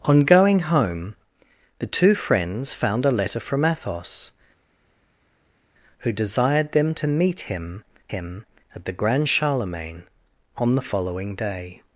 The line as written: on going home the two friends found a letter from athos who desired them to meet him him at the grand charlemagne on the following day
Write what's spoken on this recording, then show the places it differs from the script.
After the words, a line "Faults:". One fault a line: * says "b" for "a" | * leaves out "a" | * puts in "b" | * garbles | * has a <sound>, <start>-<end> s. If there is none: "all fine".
on going home the two friends found a letter from athos who desired them to meet him him at the grand charlemagne on the following day
Faults:
all fine